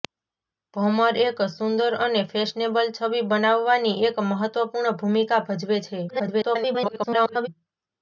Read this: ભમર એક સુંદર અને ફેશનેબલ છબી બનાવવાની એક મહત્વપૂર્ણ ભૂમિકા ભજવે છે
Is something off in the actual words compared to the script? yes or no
yes